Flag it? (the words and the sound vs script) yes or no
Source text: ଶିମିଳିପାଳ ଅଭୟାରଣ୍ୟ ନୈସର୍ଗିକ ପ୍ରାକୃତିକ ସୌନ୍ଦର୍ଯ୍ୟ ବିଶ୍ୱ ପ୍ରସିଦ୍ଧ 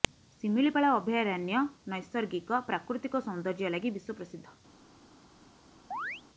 yes